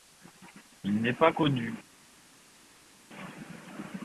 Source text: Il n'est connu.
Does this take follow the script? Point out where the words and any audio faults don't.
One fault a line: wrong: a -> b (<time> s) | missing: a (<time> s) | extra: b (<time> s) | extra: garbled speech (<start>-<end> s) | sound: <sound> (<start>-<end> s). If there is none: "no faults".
extra: pas (1.1 s)